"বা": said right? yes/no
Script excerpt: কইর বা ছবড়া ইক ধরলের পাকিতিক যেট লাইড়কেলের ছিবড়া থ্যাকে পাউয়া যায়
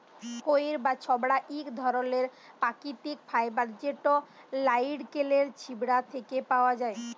yes